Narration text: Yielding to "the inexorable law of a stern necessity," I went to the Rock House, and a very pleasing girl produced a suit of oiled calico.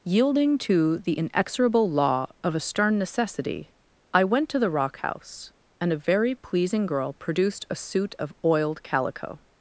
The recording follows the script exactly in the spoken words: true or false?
true